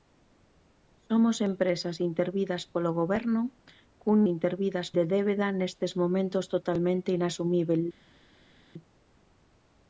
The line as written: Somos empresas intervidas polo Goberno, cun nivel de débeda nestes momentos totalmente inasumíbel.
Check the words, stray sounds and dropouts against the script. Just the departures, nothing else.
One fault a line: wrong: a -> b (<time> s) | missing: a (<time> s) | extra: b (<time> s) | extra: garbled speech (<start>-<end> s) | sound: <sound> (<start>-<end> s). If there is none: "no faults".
wrong: nivel -> intervidas (4.3 s)